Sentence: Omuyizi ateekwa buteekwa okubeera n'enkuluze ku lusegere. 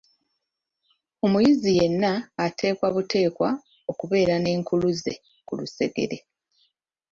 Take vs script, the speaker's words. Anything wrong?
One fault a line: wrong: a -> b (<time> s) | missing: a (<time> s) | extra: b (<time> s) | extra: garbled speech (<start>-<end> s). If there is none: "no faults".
extra: yenna (1.8 s)